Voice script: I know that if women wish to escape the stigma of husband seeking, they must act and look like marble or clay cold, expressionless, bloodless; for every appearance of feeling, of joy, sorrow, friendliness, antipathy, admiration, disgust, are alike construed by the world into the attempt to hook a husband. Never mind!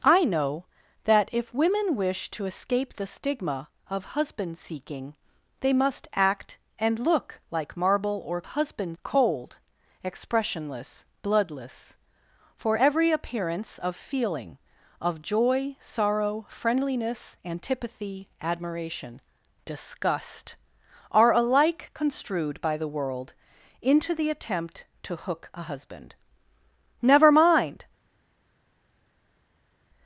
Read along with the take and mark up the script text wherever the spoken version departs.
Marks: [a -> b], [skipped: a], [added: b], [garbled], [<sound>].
I know that if women wish to escape the stigma of husband seeking, they must act and look like marble or [clay -> husband] cold, expressionless, bloodless; for every appearance of feeling, of joy, sorrow, friendliness, antipathy, admiration, disgust, are alike construed by the world into the attempt to hook a husband. Never mind!